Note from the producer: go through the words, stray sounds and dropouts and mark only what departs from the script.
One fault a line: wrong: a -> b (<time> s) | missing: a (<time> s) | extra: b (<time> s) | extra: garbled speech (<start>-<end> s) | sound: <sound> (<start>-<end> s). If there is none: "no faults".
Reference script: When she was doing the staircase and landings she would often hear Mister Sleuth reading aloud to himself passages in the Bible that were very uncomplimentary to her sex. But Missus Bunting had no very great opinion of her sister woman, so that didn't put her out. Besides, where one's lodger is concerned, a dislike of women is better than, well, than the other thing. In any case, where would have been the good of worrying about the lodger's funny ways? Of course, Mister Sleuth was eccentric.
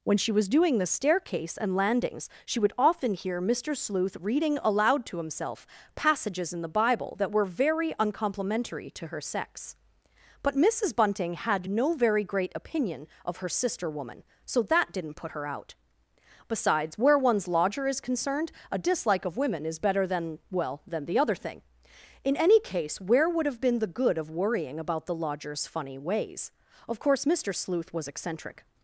no faults